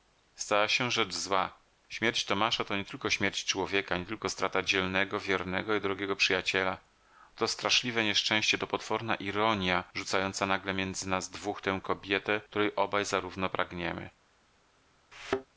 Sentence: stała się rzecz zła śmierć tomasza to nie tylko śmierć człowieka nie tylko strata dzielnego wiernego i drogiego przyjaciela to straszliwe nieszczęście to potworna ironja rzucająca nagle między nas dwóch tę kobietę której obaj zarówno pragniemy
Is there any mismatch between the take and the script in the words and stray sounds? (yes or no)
yes